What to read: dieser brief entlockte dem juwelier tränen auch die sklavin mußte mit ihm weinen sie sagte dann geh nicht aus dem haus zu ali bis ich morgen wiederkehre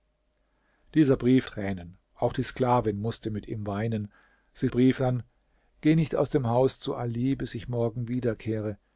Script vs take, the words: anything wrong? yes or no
yes